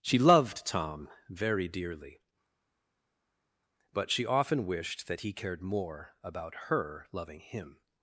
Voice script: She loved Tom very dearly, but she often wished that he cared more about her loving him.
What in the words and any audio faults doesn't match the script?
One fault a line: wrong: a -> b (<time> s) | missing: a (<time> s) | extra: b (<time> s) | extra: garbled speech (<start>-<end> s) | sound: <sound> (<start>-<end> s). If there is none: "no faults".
no faults